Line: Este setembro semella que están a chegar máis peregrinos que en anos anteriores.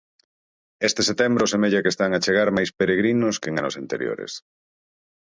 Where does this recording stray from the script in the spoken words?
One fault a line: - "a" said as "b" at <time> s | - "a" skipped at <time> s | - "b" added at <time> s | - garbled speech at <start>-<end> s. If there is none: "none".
none